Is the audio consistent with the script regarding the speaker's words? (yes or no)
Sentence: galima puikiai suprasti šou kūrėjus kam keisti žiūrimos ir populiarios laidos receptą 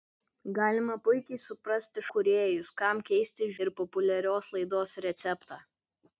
no